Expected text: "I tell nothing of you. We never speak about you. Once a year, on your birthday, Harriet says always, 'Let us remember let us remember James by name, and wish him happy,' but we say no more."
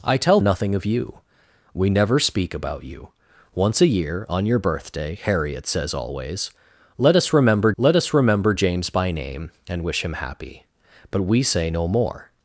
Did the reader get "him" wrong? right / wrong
right